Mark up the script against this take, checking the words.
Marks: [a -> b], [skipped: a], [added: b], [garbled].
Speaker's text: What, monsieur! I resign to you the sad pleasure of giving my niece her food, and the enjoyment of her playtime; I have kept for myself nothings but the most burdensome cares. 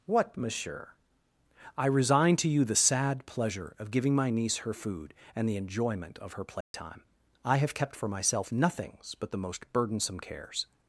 What, monsieur! I resign to you the sad pleasure of giving my niece her food, and the enjoyment of her playtime; I have kept for myself nothings but the most burdensome cares.